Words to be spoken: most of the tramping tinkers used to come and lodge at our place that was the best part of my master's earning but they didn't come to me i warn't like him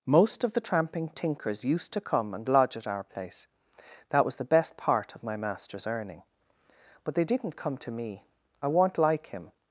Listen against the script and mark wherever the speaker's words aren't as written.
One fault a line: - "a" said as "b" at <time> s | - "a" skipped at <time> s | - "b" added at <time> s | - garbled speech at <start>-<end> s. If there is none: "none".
none